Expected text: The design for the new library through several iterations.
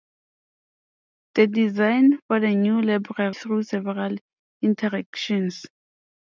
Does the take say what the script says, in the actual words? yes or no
yes